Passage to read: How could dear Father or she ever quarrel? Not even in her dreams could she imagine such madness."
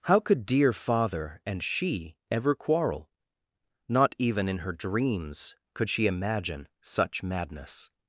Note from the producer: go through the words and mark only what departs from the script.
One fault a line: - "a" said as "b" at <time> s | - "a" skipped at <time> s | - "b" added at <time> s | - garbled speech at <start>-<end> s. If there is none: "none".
- "or" said as "and" at 1.4 s